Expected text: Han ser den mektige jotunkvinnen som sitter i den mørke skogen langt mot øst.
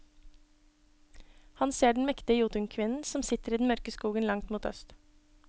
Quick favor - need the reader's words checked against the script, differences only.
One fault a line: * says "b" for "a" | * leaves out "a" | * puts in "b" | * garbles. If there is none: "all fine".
all fine